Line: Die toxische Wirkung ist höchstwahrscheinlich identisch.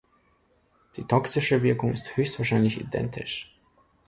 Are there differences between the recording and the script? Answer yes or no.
no